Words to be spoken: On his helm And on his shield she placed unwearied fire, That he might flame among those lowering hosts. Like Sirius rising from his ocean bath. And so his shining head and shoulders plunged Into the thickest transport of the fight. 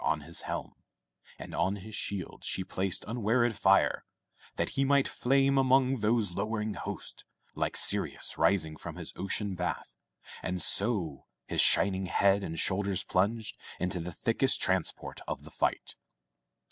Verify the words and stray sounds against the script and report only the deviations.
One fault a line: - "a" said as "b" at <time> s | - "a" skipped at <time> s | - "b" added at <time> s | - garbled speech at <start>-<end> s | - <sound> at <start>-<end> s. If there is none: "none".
none